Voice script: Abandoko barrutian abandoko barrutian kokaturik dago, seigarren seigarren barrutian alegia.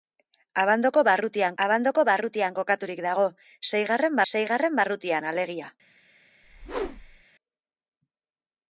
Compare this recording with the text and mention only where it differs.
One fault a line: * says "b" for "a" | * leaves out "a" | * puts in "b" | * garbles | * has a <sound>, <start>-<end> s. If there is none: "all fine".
* has a whoosh, 6.4-7.2 s